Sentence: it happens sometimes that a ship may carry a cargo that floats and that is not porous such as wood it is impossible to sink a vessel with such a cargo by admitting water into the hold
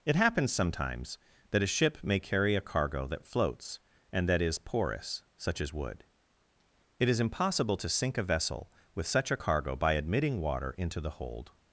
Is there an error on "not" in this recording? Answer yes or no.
yes